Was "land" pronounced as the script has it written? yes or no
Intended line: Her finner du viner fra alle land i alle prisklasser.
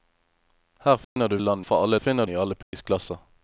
no